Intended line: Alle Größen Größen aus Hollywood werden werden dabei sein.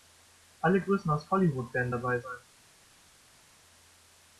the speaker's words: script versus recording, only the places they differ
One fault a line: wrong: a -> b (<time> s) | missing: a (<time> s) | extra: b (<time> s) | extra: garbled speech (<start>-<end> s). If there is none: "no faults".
missing: Größen (1.1 s)
missing: werden (1.9 s)